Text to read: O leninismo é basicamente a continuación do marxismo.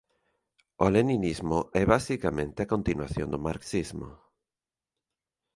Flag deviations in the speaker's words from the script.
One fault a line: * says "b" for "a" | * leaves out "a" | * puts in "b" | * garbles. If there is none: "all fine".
all fine